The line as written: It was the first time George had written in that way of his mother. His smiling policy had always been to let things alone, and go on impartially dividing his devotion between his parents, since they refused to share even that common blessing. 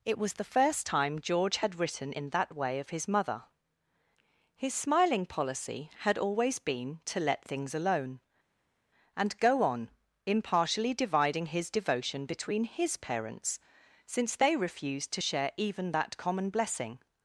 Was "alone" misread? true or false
false